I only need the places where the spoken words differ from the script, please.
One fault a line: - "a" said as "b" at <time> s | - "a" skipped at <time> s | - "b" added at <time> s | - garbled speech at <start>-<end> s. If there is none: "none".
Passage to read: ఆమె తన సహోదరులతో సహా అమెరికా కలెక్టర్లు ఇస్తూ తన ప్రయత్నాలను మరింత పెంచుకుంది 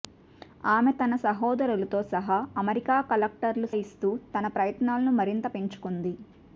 none